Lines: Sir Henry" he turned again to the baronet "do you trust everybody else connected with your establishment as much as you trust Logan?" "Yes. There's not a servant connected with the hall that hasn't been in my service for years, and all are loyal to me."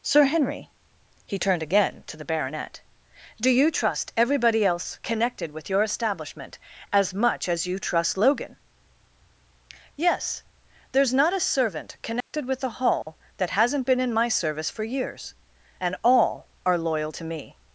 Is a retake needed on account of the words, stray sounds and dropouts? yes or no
yes